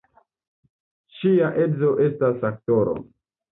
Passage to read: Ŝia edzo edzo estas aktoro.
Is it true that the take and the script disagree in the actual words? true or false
true